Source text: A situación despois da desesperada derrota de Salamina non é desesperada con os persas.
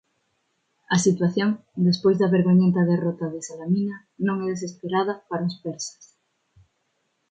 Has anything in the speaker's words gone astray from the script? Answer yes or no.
yes